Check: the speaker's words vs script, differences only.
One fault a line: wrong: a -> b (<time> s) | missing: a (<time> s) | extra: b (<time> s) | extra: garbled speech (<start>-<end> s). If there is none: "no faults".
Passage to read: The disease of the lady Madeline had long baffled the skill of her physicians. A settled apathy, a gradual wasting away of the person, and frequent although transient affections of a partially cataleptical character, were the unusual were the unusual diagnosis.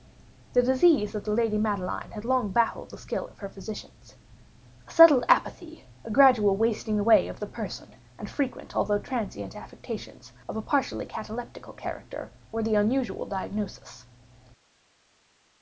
missing: were the unusual (13.3 s)